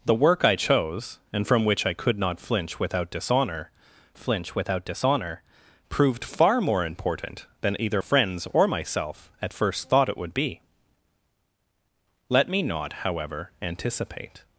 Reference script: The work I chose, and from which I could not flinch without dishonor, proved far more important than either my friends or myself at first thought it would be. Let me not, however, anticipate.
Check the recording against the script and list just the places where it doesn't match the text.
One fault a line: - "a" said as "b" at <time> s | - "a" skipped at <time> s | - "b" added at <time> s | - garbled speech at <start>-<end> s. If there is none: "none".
- "flinch without dishonor" added at 4.2 s
- "my" skipped at 8.0 s